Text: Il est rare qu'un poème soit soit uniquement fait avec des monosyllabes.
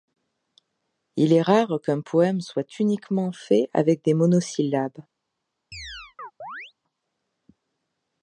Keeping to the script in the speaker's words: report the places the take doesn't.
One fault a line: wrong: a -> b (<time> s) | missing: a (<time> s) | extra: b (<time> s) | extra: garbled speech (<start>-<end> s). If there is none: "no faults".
missing: soit (2.8 s)